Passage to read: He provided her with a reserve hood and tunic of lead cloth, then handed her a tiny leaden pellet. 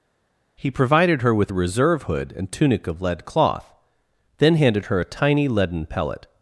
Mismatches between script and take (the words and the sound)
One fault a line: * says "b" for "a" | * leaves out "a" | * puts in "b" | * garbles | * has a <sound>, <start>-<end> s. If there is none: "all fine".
all fine